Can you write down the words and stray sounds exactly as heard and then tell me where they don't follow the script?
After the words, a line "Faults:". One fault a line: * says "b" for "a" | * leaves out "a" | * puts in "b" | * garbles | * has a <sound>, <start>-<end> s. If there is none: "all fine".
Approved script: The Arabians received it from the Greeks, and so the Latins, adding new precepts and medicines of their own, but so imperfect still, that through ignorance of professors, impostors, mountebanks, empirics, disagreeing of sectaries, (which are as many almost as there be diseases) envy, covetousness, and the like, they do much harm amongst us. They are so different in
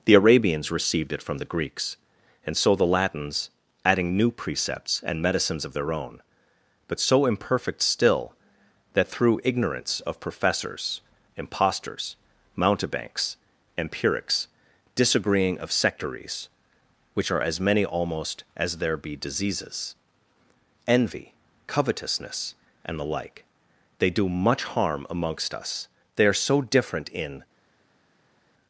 The Arabians received it from the Greeks, and so the Latins, adding new precepts and medicines of their own, but so imperfect still, that through ignorance of professors, impostors, mountebanks, empirics, disagreeing of sectaries, (which are as many almost as there be diseases) envy, covetousness, and the like, they do much harm amongst us. They are so different in
Faults:
all fine